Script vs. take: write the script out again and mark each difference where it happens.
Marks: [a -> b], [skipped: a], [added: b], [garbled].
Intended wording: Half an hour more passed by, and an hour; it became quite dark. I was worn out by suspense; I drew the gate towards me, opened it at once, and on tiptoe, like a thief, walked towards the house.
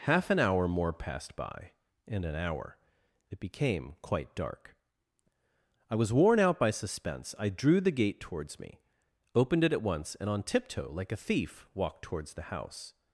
Half an hour more passed by, and an hour; it became quite dark. I was worn out by suspense; I drew the gate towards me, opened it at once, and on tiptoe, like a thief, walked towards the house.